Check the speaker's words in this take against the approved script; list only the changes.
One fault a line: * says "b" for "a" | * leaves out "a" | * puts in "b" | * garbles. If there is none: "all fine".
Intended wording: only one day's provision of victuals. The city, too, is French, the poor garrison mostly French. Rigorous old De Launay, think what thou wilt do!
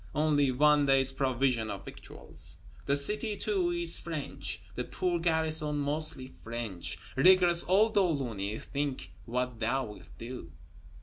all fine